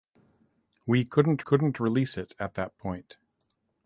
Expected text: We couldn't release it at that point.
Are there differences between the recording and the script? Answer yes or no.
yes